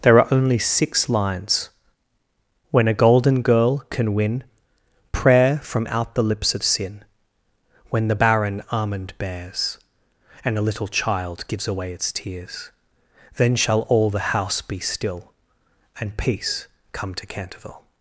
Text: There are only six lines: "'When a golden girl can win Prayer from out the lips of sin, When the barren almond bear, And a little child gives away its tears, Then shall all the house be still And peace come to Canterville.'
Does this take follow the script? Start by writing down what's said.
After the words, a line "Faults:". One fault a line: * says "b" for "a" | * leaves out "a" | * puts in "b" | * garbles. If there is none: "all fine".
There are only six lines: "'When a golden girl can win Prayer from out the lips of sin, When the barren almond bears, And a little child gives away its tears, Then shall all the house be still And peace come to Canterville.'
Faults:
* says "bears" for "bear"